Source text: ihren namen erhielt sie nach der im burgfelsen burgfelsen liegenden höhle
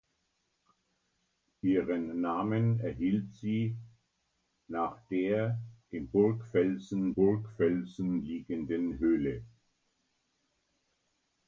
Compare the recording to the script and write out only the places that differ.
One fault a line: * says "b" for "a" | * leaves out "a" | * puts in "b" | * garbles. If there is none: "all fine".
all fine